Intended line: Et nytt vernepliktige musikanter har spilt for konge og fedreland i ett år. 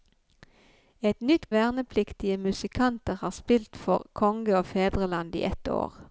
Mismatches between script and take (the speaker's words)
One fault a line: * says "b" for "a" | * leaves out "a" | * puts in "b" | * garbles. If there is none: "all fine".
all fine